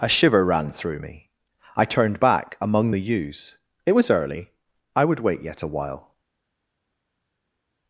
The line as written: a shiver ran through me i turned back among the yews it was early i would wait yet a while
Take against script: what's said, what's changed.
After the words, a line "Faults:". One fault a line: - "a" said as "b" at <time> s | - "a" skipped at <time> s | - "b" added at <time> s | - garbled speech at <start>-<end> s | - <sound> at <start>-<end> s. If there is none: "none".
a shiver ran through me i turned back among the yews it was early i would wait yet a while
Faults:
none